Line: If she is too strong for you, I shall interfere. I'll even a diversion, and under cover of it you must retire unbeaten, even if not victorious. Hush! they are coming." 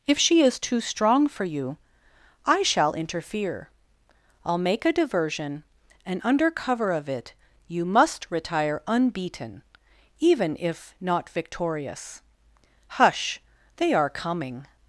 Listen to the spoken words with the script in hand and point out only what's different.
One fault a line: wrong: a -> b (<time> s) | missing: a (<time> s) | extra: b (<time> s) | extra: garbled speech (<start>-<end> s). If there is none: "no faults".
wrong: even -> make (4.6 s)